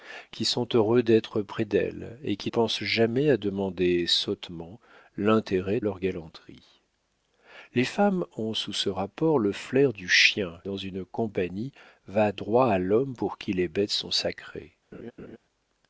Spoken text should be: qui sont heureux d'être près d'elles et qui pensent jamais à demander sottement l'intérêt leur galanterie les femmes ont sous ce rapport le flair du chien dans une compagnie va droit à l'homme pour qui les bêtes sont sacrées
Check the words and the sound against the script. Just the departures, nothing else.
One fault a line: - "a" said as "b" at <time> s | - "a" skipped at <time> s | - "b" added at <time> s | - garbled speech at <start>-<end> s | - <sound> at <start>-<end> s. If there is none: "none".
- laugh at 14.9-15.4 s